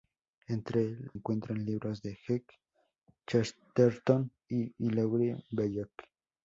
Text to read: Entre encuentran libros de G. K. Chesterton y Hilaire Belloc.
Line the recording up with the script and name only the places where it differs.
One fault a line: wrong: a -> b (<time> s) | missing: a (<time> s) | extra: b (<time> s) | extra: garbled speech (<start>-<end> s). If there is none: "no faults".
no faults